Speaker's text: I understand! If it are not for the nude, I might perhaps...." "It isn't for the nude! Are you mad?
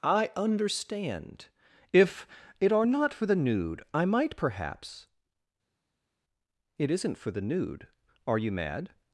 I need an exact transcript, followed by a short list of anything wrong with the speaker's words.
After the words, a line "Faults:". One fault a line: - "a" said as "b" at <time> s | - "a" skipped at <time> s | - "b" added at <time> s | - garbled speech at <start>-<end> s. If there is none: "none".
I understand! If it are not for the nude, I might perhaps...." "It isn't for the nude! Are you mad?
Faults:
none